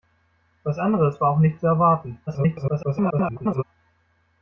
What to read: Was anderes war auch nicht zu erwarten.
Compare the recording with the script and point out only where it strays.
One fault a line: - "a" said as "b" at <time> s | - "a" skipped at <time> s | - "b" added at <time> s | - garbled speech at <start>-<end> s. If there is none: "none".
- garbled speech at 2.3-3.6 s